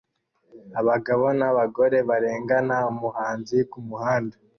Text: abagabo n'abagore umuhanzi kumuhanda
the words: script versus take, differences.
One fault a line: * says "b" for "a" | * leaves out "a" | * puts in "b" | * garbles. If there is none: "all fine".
* puts in "barengana"